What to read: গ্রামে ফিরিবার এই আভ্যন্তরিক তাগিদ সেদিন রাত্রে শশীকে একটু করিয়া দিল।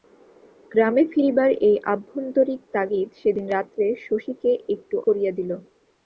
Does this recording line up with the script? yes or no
yes